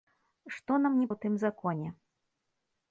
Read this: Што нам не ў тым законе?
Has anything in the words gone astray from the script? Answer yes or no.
no